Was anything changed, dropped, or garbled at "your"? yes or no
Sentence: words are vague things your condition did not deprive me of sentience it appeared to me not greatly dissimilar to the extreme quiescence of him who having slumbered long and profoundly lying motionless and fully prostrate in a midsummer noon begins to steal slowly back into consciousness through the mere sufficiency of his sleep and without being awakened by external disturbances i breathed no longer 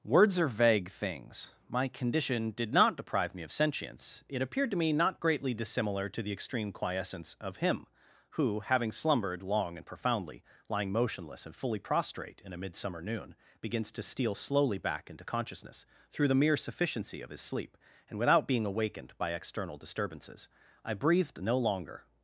yes